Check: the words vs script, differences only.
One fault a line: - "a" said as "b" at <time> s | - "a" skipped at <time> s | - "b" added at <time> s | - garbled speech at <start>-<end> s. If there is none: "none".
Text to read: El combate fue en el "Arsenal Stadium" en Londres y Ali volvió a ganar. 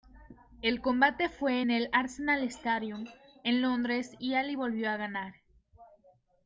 none